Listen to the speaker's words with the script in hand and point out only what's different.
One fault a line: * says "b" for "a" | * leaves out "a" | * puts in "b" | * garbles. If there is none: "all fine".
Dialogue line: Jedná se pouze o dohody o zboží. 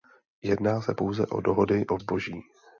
all fine